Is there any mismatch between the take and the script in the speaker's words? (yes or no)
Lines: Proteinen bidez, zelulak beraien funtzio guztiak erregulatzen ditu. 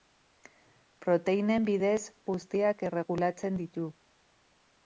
yes